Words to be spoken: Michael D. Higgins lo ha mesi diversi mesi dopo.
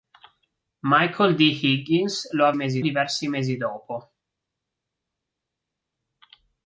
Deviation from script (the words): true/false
false